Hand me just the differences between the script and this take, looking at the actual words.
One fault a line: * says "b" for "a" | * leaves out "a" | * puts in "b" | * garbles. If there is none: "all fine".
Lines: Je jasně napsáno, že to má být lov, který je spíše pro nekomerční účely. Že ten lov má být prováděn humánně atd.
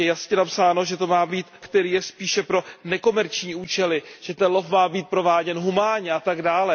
* leaves out "lov"